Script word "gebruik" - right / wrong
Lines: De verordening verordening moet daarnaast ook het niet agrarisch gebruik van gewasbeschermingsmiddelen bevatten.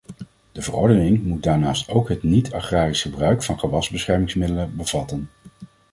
right